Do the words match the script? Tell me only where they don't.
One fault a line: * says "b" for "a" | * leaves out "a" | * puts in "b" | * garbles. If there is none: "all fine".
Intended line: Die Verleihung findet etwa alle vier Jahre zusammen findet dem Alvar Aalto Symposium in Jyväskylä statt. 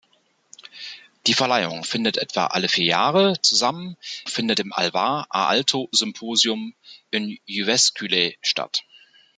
all fine